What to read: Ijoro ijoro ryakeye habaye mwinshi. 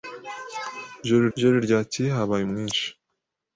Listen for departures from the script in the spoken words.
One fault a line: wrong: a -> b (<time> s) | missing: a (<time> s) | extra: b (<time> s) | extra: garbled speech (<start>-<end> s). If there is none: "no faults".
no faults